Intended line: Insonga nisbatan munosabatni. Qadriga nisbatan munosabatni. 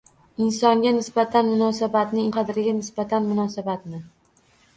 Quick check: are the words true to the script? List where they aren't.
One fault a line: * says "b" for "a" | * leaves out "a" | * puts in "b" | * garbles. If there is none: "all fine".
all fine